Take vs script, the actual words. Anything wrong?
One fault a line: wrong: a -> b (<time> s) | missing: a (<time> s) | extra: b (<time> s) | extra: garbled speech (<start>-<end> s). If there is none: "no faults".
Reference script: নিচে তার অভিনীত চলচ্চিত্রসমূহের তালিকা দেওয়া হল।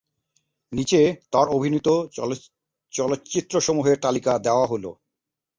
no faults